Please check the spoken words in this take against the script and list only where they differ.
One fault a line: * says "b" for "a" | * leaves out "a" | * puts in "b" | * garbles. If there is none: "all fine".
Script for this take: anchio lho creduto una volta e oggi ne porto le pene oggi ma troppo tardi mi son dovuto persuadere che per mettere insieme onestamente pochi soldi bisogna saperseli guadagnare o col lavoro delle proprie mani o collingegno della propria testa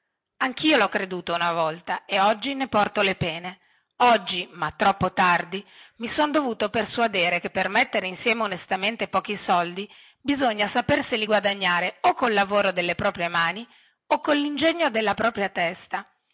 all fine